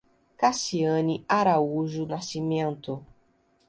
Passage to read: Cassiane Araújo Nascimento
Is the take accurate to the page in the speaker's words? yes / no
yes